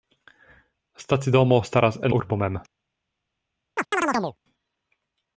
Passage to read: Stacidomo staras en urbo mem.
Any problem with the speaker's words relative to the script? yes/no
no